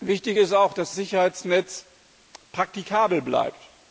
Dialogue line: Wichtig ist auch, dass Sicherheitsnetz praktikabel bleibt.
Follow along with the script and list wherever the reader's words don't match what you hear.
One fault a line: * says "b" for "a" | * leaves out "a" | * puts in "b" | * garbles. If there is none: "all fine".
all fine